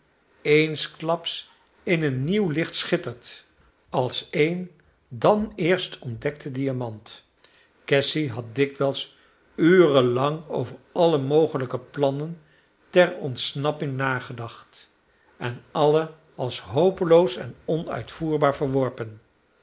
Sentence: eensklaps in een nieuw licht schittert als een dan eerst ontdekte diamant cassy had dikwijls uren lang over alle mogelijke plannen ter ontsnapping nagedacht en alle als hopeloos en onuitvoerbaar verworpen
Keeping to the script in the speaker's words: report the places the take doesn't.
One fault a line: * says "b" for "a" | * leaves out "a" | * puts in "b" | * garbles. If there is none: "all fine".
all fine